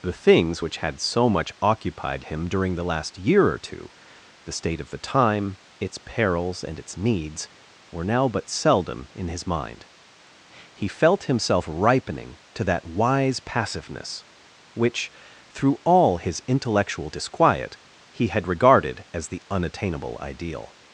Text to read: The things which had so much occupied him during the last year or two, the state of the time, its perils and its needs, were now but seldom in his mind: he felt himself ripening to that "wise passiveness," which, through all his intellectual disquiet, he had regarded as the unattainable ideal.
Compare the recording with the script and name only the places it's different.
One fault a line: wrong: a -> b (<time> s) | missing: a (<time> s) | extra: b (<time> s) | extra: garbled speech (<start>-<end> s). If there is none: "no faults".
no faults